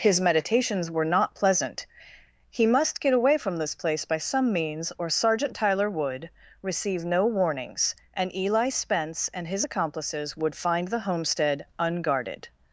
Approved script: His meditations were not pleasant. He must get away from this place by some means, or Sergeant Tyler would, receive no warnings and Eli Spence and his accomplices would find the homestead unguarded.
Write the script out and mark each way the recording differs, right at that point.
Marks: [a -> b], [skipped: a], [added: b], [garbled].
His meditations were not pleasant. He must get away from this place by some means, or Sergeant Tyler would, receive no warnings and Eli Spence and his accomplices would find the homestead unguarded.